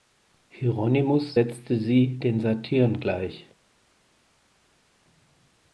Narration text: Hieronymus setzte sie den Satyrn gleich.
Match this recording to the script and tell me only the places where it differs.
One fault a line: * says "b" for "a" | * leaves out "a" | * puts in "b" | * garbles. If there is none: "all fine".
all fine